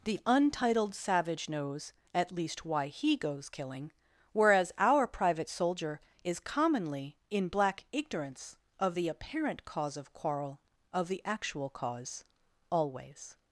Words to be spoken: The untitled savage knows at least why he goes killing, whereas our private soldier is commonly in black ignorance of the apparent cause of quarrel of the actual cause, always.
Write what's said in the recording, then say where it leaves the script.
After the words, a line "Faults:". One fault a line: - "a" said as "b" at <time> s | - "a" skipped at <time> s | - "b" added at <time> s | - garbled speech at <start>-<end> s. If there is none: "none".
The untitled savage knows at least why he goes killing, whereas our private soldier is commonly in black ignorance of the apparent cause of quarrel of the actual cause, always.
Faults:
none